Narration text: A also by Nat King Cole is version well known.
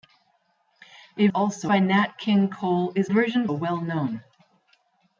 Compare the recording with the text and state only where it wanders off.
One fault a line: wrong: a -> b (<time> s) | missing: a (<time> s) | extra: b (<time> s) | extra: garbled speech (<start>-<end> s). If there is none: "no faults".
no faults